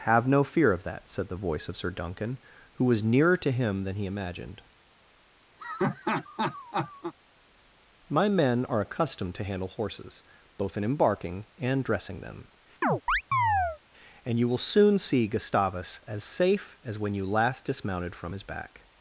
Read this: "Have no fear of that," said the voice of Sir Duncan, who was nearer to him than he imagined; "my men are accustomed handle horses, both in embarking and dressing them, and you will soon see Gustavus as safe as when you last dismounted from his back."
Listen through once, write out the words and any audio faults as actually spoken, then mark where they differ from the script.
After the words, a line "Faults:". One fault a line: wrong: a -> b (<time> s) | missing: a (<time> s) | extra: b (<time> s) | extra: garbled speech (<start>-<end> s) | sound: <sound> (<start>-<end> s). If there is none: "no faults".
"Have no fear of that," said the voice of Sir Duncan, who was nearer to him than he imagined; "my men are accustomed to handle horses, both in embarking and dressing them, and you will soon see Gustavus as safe as when you last dismounted from his back."
Faults:
sound: laugh (5.6-7.1 s)
extra: to (9.3 s)
sound: chirp (12.8-13.8 s)